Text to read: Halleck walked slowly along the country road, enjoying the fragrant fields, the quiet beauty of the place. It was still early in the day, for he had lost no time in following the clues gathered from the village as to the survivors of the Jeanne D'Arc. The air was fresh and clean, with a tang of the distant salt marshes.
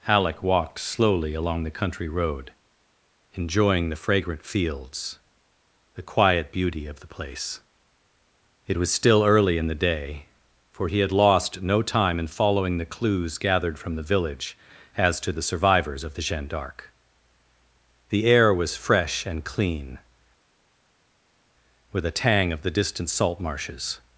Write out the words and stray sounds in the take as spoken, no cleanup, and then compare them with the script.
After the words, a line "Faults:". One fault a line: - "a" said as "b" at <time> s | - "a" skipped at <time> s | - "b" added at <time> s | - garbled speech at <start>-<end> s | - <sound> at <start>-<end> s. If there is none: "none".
Halleck walked slowly along the country road, enjoying the fragrant fields, the quiet beauty of the place. It was still early in the day, for he had lost no time in following the clues gathered from the village as to the survivors of the Jeanne D'Arc. The air was fresh and clean, with a tang of the distant salt marshes.
Faults:
none